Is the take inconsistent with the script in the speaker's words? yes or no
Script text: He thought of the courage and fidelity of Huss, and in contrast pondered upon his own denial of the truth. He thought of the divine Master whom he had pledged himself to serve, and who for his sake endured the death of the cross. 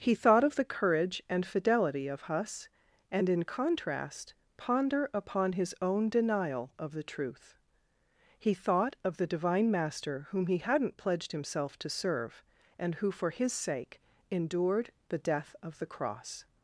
yes